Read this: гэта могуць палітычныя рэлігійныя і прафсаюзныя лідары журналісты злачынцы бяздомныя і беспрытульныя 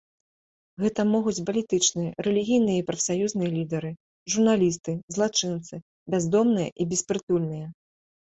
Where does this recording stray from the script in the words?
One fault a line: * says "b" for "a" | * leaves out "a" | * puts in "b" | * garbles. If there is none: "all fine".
all fine